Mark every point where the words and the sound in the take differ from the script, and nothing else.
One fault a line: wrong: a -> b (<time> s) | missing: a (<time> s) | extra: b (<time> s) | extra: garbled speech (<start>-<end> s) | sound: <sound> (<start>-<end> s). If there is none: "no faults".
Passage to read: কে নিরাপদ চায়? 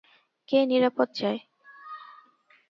no faults